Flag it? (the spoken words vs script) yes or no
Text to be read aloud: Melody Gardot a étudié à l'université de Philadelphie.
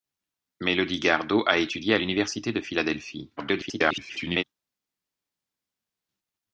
yes